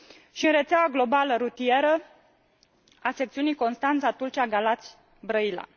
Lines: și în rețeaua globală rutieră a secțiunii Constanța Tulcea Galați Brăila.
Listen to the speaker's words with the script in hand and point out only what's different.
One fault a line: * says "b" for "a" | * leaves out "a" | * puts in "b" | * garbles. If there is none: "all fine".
all fine